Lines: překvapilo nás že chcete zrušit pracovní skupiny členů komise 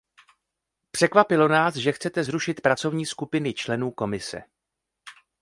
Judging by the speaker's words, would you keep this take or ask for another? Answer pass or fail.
pass